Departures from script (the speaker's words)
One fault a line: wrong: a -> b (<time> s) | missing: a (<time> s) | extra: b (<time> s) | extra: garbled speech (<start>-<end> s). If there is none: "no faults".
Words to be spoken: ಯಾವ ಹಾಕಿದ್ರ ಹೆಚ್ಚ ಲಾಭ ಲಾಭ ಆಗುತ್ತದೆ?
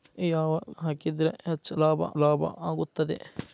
no faults